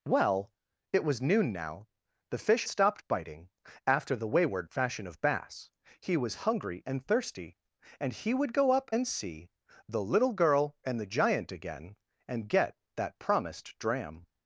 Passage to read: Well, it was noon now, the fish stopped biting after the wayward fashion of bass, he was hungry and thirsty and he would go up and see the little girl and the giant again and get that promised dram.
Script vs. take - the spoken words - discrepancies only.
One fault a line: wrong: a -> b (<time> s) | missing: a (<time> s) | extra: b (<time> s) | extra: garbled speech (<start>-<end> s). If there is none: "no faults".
no faults